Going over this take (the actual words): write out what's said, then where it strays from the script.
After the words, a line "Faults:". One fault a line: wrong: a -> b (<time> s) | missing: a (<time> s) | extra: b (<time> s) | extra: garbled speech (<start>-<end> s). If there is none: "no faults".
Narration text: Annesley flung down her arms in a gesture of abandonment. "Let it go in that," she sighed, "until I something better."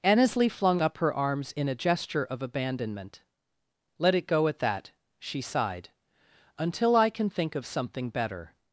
Annesley flung up her arms in a gesture of abandonment. "Let it go at that," she sighed, "until I can think of something better."
Faults:
wrong: down -> up (0.8 s)
wrong: in -> at (4.5 s)
extra: can think of (7.1 s)